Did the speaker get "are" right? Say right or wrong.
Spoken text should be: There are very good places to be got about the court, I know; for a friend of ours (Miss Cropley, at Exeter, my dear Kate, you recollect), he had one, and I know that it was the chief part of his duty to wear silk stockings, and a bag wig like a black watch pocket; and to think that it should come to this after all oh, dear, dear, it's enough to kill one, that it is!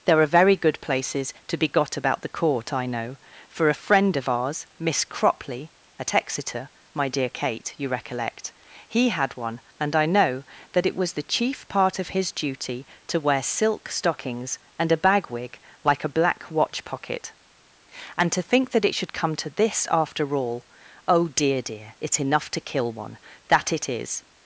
right